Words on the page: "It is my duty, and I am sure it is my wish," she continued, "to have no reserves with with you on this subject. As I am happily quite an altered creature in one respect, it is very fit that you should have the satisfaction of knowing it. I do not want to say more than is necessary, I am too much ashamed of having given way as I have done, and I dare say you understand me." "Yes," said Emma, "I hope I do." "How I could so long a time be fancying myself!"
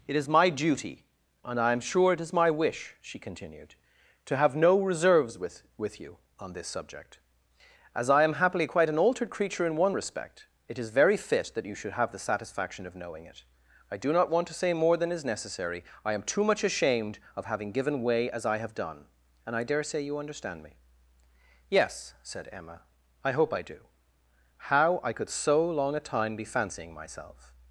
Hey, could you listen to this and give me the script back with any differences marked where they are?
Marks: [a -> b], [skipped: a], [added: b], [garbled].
"It is my duty, and I am sure it is my wish," she continued, "to have no reserves with with you on this subject. As I am happily quite an altered creature in one respect, it is very fit that you should have the satisfaction of knowing it. I do not want to say more than is necessary, I am too much ashamed of having given way as I have done, and I dare say you understand me." "Yes," said Emma, "I hope I do." "How I could so long a time be fancying myself!"